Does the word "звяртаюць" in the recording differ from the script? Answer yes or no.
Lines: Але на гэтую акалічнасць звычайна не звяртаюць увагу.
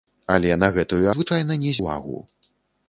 yes